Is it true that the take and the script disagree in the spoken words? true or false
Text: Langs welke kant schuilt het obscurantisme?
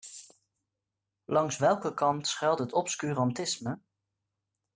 false